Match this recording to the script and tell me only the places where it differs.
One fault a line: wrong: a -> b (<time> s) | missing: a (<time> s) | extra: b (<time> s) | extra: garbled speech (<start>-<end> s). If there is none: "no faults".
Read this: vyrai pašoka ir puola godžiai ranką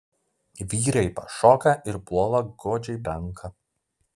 no faults